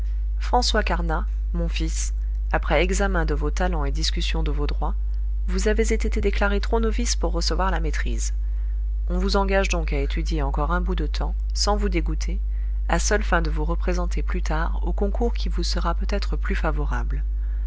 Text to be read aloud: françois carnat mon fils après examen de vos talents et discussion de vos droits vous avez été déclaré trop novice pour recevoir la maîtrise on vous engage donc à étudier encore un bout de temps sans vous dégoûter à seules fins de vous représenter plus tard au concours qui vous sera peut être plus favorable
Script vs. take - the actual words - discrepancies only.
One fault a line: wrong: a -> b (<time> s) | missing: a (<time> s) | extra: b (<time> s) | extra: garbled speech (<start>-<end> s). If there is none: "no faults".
extra: été (6.0 s)